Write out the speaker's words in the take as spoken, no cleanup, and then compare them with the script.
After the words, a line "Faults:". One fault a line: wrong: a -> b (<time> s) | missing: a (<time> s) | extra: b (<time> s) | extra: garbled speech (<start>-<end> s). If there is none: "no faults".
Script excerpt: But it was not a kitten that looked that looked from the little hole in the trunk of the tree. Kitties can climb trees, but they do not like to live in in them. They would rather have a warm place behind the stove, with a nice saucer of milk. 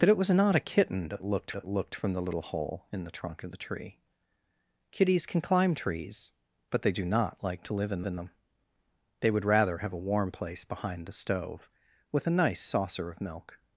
But it was not a kitten that looked that looked from the little hole in the trunk of the tree. Kitties can climb trees, but they do not like to live in in them. They would rather have a warm place behind the stove, with a nice saucer of milk.
Faults:
no faults